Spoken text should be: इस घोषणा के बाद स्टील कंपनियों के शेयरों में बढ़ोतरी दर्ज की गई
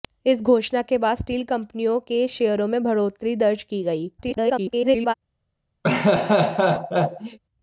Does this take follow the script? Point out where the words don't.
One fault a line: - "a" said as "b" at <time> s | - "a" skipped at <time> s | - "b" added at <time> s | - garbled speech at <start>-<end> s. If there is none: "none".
- garbled speech at 4.2-5.1 s